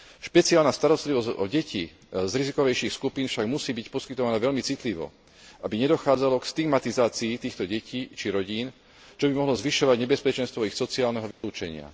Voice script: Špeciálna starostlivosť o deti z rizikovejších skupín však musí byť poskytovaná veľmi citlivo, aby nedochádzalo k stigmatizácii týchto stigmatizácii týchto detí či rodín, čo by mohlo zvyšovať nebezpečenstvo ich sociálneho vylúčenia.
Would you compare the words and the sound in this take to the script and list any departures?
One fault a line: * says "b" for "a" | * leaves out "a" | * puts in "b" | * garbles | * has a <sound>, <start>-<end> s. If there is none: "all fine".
* leaves out "stigmatizácii týchto"
* has a dropout, 11.3-11.4 s